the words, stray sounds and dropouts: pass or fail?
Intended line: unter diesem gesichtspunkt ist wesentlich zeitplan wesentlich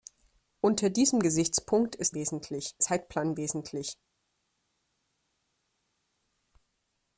pass